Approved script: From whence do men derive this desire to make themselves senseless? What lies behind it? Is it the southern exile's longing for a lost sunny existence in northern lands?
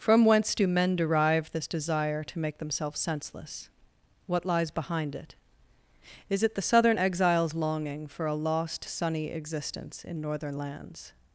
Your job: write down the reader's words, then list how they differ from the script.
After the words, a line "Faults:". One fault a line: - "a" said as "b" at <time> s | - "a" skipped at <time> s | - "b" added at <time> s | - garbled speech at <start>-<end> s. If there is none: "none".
From whence do men derive this desire to make themselves senseless? What lies behind it? Is it the southern exile's longing for a lost sunny existence in northern lands?
Faults:
none